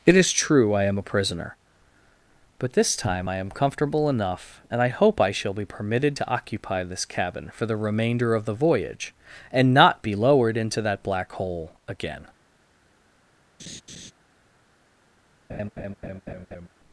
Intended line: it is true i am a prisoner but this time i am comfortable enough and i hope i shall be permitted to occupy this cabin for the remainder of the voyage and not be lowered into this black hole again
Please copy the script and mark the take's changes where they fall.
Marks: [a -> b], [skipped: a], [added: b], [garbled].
it is true i am a prisoner but this time i am comfortable enough and i hope i shall be permitted to occupy this cabin for the remainder of the voyage and not be lowered into [this -> that] black hole again